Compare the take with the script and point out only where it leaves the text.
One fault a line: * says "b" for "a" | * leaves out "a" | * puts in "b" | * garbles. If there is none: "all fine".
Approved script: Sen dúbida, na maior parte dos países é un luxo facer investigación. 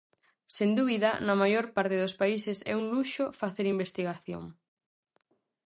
all fine